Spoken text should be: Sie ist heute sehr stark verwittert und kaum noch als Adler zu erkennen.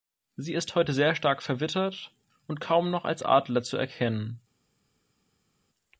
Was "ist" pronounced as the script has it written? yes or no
yes